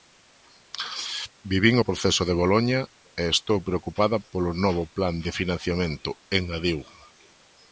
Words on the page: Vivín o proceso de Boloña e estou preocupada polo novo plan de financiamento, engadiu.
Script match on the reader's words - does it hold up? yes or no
yes